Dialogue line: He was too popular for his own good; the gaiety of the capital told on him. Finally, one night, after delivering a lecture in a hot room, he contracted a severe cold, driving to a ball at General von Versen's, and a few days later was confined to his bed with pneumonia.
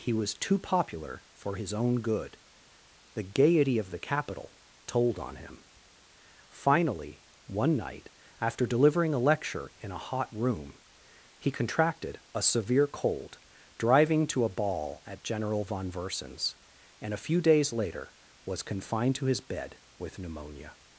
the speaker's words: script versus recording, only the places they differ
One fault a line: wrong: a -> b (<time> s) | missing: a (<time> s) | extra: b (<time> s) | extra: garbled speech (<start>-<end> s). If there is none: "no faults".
no faults